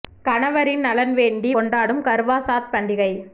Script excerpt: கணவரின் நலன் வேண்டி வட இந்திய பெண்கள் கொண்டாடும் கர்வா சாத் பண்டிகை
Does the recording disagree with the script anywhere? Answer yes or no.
yes